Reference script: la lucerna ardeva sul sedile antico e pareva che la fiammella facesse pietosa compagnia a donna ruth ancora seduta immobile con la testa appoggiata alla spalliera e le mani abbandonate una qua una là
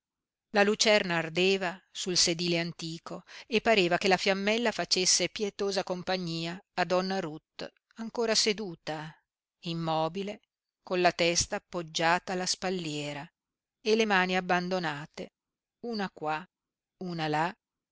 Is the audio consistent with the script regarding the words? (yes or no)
yes